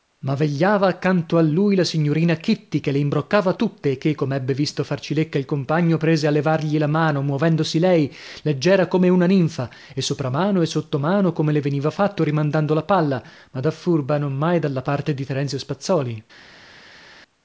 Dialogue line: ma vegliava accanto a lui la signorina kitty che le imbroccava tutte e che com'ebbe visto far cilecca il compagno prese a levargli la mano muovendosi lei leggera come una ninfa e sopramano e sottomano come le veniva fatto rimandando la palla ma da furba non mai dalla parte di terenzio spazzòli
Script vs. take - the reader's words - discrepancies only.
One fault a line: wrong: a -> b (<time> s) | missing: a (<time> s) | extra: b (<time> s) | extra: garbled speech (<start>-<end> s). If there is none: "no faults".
no faults